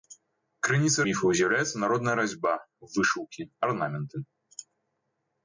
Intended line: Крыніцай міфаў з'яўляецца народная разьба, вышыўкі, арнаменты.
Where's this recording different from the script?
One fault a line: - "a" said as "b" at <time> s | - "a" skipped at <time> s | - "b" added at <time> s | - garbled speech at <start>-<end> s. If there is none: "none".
none